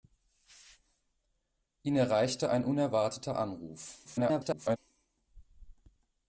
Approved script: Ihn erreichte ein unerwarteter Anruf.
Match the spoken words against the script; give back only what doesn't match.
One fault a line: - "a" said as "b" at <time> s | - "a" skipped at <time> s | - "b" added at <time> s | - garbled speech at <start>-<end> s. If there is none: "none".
- garbled speech at 4.0-4.8 s